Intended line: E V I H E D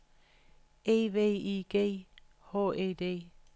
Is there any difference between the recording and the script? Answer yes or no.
yes